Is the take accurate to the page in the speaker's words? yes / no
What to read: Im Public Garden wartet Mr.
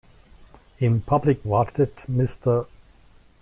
no